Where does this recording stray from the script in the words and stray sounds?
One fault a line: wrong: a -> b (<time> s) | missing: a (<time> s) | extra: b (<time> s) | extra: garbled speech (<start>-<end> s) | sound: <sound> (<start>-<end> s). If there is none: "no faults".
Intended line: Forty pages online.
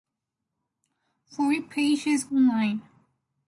no faults